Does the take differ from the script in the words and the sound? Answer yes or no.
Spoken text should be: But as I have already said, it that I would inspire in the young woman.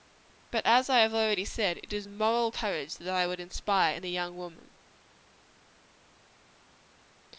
yes